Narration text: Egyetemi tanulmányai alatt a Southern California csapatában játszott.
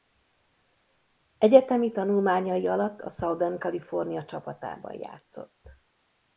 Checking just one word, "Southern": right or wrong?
right